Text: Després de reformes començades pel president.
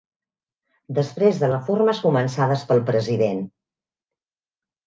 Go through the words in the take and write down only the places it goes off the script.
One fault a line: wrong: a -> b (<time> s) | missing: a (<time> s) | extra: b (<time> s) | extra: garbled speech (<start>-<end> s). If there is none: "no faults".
no faults